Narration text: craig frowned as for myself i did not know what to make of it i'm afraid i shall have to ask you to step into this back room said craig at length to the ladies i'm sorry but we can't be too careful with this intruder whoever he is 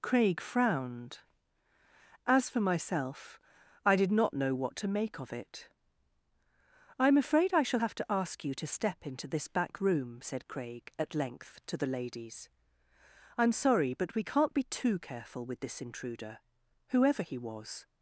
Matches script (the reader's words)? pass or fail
fail